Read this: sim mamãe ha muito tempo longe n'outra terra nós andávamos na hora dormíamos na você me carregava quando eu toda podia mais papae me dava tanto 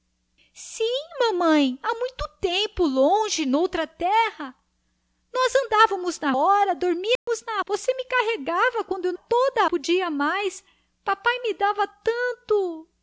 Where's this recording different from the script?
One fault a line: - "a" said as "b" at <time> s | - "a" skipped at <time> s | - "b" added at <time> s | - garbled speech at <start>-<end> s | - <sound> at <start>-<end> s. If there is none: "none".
- dropout at 7.2-7.3 s